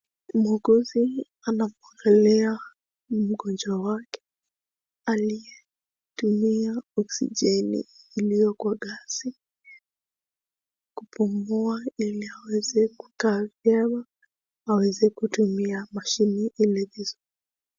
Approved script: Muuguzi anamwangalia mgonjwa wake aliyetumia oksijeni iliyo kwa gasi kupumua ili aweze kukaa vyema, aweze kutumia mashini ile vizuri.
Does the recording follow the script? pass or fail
pass